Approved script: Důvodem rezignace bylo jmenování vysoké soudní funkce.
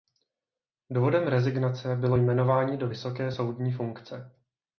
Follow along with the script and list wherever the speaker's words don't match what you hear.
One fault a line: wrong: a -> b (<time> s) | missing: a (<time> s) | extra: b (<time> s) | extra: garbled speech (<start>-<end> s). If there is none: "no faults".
extra: do (2.8 s)